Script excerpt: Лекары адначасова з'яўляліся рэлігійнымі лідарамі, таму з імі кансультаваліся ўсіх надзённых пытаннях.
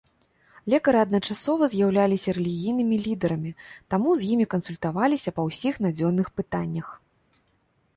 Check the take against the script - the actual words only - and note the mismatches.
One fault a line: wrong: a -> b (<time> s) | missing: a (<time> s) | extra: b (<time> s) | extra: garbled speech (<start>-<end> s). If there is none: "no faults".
extra: па (5.4 s)